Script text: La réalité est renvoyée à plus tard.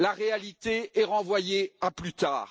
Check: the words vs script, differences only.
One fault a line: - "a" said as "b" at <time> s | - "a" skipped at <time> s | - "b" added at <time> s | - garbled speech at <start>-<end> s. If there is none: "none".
none